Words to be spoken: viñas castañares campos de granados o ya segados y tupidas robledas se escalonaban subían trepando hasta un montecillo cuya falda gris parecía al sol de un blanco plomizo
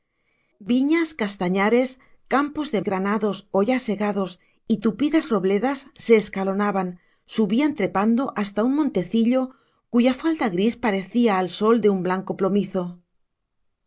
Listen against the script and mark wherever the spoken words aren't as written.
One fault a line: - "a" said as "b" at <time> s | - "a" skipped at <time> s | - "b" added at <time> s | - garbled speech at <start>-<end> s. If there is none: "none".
none